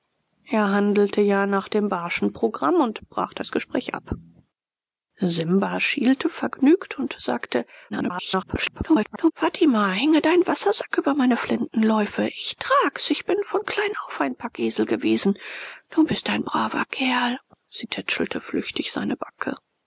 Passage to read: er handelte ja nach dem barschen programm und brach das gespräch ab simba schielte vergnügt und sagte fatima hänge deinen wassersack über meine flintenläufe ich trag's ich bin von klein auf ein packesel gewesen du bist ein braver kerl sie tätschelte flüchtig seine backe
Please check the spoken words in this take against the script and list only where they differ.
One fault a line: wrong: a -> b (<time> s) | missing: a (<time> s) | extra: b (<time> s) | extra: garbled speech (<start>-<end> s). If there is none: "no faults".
extra: garbled speech (7.9-9.3 s)